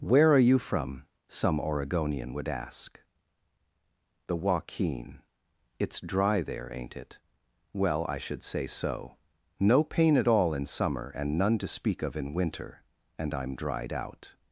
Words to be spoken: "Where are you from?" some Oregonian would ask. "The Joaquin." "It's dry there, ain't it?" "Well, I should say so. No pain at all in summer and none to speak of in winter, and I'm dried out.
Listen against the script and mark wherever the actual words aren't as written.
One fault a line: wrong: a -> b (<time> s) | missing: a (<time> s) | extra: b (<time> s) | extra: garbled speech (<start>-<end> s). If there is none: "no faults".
no faults